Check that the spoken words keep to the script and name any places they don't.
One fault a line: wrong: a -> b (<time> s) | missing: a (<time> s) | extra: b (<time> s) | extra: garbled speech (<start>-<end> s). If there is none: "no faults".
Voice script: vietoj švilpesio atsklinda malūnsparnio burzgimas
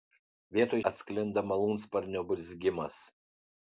missing: švilpesio (0.8 s)